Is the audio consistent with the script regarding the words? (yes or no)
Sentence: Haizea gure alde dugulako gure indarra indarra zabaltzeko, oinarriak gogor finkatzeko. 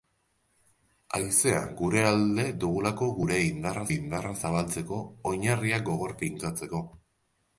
yes